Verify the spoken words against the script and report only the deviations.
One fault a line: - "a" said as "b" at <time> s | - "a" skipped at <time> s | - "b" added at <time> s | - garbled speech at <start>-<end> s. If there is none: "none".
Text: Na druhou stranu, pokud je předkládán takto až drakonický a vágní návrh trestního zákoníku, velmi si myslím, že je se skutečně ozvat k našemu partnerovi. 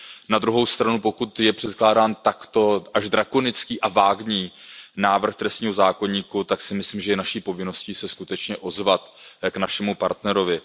- "velmi" said as "tak" at 6.4 s
- "naší povinností" added at 7.2 s